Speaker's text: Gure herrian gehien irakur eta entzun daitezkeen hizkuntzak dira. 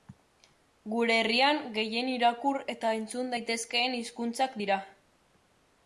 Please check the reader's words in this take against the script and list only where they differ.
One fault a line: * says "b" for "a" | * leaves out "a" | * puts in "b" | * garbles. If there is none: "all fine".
all fine